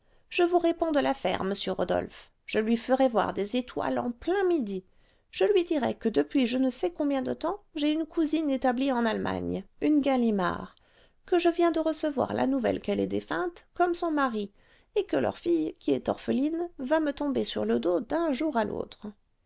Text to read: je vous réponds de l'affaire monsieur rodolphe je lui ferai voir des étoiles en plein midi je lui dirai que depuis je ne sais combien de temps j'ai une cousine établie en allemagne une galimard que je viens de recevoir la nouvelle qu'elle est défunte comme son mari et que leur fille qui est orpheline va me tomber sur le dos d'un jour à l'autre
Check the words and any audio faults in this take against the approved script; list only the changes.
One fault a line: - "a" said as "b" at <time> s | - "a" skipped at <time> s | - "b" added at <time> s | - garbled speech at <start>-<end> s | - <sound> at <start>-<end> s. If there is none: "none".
none